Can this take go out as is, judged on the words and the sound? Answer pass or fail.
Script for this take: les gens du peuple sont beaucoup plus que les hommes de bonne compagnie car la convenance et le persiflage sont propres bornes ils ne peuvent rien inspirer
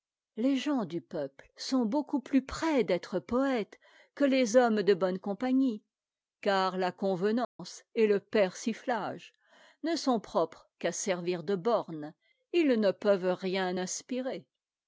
fail